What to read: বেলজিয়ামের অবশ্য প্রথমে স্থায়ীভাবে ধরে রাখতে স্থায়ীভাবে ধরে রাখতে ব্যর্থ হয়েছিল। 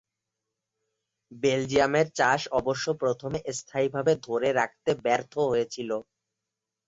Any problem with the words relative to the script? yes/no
yes